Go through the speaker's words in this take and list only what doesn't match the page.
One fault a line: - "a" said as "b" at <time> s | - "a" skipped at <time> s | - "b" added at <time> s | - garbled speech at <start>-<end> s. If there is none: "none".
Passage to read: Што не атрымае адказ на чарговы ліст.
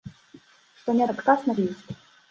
- "атрымае" skipped at 1.0 s
- "чарговы" skipped at 1.6 s